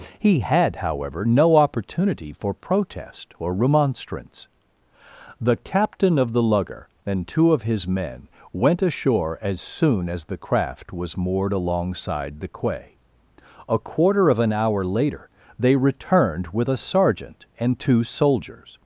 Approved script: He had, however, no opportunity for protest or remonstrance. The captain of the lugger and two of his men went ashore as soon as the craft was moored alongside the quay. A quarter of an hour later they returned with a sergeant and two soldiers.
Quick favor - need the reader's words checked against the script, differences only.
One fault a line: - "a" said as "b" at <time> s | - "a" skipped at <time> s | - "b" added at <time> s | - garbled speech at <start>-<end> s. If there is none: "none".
none